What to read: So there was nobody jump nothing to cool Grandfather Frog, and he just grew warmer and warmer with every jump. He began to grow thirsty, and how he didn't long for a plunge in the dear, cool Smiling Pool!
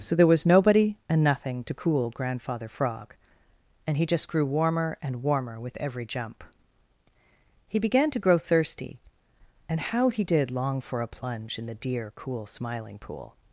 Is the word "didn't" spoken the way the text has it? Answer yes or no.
no